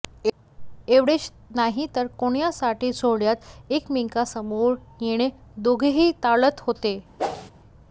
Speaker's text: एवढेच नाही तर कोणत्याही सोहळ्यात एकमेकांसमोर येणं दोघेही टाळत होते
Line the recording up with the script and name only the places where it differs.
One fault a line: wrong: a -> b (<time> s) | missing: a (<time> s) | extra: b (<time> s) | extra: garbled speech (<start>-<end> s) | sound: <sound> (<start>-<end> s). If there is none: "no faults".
sound: whoosh (7.2-7.5 s)